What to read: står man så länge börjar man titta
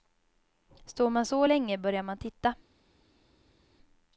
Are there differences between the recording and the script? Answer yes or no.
no